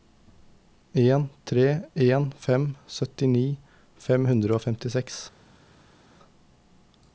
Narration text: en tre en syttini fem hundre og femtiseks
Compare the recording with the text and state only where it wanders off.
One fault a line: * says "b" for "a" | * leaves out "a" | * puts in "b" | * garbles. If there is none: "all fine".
* puts in "fem"